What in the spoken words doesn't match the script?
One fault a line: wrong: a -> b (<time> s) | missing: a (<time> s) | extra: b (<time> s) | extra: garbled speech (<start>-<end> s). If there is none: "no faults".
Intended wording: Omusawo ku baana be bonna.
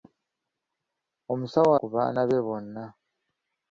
no faults